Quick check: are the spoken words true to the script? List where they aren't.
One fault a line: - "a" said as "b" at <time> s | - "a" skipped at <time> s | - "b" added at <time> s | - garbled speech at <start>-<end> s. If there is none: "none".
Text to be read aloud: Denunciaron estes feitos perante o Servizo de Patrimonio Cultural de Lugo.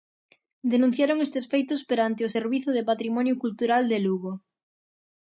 none